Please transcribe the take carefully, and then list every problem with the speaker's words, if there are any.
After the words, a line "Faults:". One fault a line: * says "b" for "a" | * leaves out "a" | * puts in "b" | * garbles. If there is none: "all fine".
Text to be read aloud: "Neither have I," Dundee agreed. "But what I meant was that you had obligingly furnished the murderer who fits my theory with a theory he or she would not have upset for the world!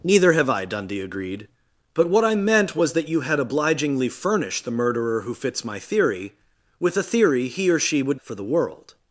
"Neither have I," Dundee agreed. "But what I meant was that you had obligingly furnished the murderer who fits my theory with a theory he or she would for the world!
Faults:
* leaves out "not have upset"